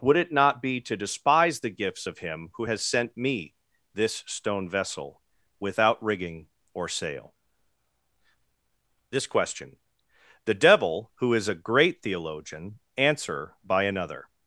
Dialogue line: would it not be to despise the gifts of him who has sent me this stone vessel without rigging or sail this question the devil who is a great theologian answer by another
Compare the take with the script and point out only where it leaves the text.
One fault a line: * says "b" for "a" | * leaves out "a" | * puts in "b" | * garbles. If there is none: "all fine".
all fine